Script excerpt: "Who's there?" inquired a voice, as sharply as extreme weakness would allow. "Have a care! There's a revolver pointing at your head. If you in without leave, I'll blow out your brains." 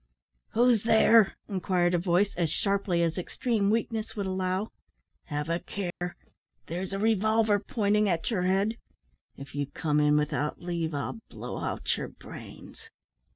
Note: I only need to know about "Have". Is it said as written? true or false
true